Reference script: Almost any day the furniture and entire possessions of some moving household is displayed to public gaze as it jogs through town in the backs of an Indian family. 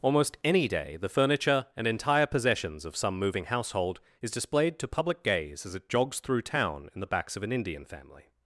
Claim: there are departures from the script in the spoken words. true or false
false